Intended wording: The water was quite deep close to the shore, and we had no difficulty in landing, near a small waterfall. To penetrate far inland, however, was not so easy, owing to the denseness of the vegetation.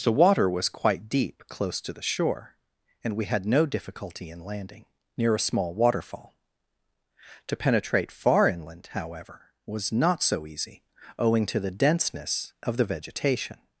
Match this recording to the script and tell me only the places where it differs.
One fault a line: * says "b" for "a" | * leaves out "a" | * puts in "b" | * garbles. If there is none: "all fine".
all fine